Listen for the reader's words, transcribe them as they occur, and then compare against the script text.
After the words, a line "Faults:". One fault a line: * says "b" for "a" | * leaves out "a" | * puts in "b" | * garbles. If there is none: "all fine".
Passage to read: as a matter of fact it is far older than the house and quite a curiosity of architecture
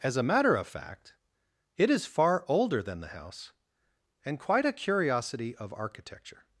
as a matter of fact it is far older than the house and quite a curiosity of architecture
Faults:
all fine